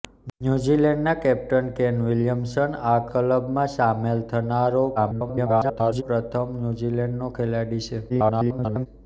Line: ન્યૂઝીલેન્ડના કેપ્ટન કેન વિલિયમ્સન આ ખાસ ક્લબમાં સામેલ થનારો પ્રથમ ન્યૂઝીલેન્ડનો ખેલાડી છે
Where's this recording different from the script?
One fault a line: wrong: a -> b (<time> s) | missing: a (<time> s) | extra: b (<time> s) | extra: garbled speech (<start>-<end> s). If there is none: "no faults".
missing: ખાસ (3.0 s)
extra: garbled speech (5.0-6.0 s)
extra: garbled speech (8.1-8.9 s)